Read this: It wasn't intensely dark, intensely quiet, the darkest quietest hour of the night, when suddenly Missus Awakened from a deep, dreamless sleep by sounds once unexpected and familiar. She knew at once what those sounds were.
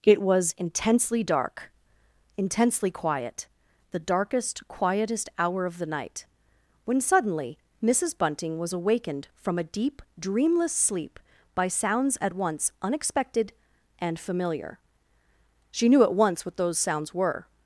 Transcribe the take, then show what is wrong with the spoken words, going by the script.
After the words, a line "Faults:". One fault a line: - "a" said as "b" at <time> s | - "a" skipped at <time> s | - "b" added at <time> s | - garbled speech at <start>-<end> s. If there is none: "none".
It was intensely dark, intensely quiet, the darkest quietest hour of the night, when suddenly Missus Bunting was awakened from a deep, dreamless sleep by sounds at once unexpected and familiar. She knew at once what those sounds were.
Faults:
- "wasn't" said as "was" at 0.2 s
- "Bunting was" added at 8.2 s
- "at" added at 12.2 s